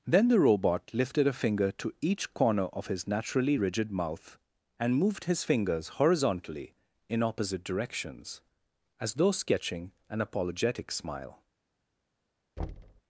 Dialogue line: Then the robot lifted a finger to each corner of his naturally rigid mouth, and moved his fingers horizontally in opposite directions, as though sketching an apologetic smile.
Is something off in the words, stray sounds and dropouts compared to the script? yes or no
yes